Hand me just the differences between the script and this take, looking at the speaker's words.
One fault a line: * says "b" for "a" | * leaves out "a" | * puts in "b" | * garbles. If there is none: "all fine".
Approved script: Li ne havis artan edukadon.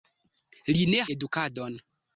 * leaves out "havis artan"